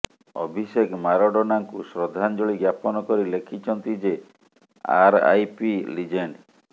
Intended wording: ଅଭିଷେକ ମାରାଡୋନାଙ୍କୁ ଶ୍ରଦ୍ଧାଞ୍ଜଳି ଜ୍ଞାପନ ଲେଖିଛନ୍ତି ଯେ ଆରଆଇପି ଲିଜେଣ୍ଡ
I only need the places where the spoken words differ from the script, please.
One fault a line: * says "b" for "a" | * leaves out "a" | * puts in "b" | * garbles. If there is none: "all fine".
* puts in "କରି"